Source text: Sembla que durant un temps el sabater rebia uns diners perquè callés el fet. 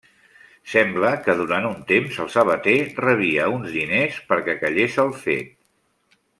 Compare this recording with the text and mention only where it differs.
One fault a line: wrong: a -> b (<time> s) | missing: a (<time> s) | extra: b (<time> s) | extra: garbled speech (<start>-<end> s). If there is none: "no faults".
no faults